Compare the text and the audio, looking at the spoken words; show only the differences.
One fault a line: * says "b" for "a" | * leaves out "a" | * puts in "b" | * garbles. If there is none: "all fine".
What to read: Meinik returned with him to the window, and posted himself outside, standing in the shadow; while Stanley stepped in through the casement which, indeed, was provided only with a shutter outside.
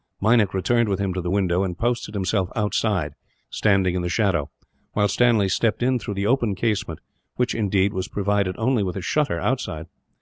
* puts in "open"